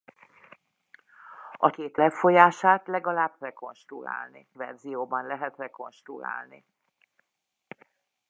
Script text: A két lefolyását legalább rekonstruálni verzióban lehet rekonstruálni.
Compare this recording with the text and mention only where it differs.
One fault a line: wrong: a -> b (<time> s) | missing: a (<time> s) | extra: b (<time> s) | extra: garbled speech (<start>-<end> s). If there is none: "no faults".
no faults